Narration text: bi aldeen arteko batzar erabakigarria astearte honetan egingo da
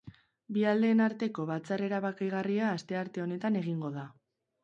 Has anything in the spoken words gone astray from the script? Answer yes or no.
no